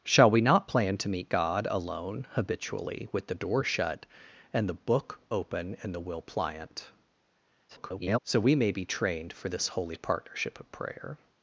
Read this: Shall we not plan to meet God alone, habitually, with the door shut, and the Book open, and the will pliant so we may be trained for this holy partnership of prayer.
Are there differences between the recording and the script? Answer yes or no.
yes